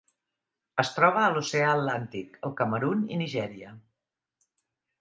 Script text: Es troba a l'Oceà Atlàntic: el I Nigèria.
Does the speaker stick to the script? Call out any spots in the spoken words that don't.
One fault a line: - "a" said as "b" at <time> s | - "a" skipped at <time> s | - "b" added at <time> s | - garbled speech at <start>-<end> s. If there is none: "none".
- "Camerun" added at 2.6 s